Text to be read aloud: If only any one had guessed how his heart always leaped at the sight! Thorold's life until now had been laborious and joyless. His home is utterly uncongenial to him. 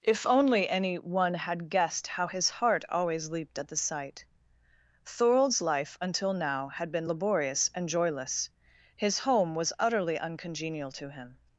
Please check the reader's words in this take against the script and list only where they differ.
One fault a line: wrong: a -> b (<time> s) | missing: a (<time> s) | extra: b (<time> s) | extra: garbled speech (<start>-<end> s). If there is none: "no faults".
wrong: is -> was (9.5 s)